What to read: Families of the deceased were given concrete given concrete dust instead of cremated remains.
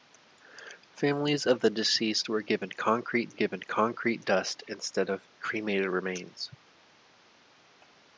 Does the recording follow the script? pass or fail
pass